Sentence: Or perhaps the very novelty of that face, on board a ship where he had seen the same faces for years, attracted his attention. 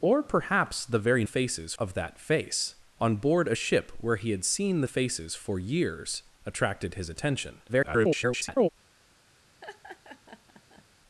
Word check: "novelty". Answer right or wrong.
wrong